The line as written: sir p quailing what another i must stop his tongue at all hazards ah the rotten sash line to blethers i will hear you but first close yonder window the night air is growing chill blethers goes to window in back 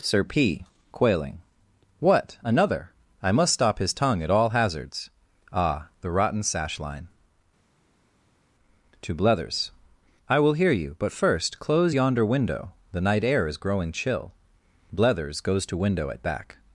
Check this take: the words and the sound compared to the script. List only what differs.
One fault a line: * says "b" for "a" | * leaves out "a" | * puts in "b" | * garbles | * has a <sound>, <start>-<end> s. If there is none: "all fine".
* says "at" for "in"